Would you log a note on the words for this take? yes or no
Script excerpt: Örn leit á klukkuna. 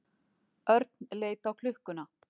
no